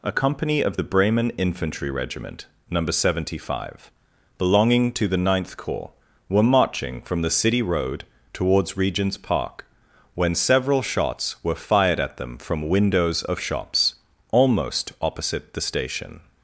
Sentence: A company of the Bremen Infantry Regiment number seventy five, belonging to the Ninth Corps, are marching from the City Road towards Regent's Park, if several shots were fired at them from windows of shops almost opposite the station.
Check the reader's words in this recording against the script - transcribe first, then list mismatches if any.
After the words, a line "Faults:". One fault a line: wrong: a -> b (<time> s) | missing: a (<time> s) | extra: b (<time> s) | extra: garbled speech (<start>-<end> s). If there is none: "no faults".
A company of the Bremen Infantry Regiment number seventy five, belonging to the Ninth Corps, were marching from the City Road towards Regent's Park, when several shots were fired at them from windows of shops almost opposite the station.
Faults:
wrong: are -> were (6.3 s)
wrong: if -> when (10.2 s)